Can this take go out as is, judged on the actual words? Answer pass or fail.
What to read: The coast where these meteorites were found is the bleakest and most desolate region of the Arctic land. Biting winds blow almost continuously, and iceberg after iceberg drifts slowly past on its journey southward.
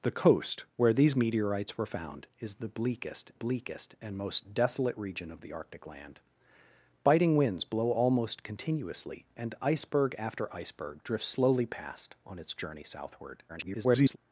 fail